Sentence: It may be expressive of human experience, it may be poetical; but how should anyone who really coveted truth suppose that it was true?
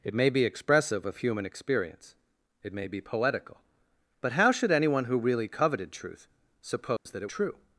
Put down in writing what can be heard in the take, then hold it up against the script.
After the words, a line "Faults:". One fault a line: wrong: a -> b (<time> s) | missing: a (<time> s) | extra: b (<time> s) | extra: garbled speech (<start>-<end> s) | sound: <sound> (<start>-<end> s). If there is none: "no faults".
It may be expressive of human experience, it may be poetical; but how should anyone who really coveted truth suppose that it true?
Faults:
sound: dropout (7.0-7.1 s)
missing: was (7.3 s)